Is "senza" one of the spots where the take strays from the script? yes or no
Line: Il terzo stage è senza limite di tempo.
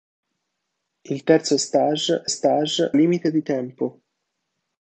yes